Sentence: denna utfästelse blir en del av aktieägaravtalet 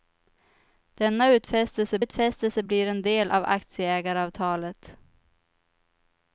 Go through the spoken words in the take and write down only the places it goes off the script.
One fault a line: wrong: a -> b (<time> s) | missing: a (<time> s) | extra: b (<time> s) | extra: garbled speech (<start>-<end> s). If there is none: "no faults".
extra: utfästelse (2.0 s)